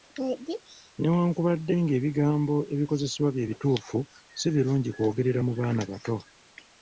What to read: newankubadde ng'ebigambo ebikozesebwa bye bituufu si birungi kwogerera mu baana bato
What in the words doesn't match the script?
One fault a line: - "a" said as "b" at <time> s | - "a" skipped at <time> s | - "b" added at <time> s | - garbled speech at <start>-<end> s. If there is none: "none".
none